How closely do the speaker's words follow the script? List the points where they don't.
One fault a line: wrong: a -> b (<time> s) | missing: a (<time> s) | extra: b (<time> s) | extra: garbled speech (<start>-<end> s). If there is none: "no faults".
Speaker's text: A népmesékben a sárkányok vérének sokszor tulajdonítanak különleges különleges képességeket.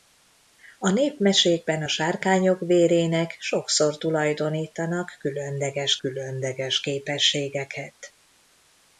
no faults